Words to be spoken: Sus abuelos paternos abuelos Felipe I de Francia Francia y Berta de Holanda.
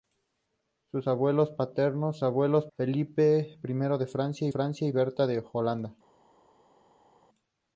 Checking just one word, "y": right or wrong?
right